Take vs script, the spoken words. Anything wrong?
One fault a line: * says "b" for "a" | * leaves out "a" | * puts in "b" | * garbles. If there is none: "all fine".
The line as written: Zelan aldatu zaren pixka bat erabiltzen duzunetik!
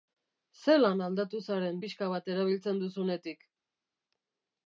all fine